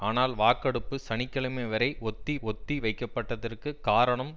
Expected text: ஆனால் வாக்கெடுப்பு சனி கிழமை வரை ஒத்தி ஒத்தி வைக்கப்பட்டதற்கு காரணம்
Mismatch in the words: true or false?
false